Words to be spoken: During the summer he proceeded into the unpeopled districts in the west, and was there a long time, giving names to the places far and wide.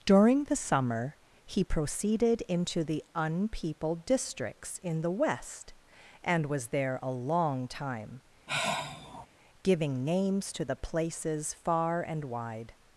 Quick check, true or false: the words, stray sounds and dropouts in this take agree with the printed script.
false